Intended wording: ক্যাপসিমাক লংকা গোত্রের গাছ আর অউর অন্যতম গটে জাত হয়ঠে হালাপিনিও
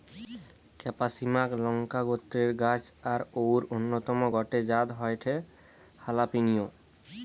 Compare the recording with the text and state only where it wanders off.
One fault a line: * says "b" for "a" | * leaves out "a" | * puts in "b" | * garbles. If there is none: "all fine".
all fine